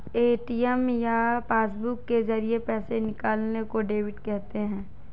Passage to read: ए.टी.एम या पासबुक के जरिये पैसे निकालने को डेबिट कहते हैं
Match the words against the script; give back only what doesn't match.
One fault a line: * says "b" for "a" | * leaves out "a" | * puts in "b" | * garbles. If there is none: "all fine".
all fine